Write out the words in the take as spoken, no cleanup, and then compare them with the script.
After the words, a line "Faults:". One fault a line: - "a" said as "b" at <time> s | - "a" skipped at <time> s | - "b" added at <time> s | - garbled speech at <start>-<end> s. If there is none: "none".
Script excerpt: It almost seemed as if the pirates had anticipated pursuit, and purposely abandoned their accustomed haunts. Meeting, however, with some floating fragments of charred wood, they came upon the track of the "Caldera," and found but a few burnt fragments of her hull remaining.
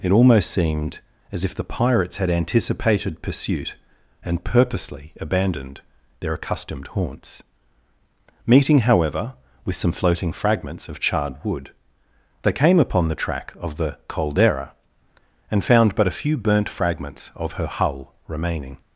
It almost seemed as if the pirates had anticipated pursuit, and purposely abandoned their accustomed haunts. Meeting, however, with some floating fragments of charred wood, they came upon the track of the "Caldera," and found but a few burnt fragments of her hull remaining.
Faults:
none